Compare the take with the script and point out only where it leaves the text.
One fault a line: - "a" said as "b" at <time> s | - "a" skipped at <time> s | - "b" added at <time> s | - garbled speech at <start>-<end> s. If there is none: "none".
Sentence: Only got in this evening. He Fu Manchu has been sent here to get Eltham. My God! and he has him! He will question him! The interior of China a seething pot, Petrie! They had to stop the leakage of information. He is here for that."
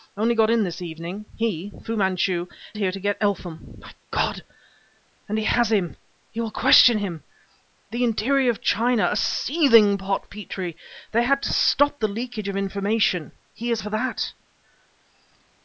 - "has been sent" skipped at 2.5 s
- "here" skipped at 13.8 s